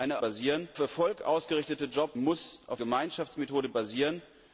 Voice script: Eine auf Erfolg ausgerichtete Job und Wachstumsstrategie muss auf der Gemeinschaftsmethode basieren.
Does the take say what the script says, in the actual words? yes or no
no